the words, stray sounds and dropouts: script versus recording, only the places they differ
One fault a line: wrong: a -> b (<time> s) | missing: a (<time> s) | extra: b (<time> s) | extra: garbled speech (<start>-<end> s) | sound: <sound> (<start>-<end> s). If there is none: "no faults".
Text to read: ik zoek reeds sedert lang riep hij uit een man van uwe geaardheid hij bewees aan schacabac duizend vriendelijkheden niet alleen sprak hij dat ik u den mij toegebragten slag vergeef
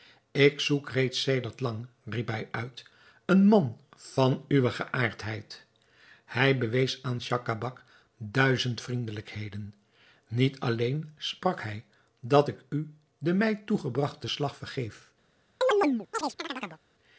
sound: chirp (15.6-16.8 s)